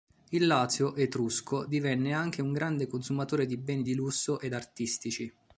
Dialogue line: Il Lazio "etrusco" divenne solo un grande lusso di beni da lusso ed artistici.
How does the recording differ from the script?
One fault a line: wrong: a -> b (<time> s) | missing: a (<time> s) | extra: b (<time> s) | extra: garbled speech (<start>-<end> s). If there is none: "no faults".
wrong: solo -> anche (2.1 s)
wrong: lusso -> consumatore (2.9 s)
wrong: da -> di (3.8 s)